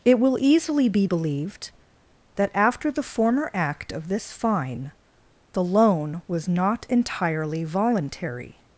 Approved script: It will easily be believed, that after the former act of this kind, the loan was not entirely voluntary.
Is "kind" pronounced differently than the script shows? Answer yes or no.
yes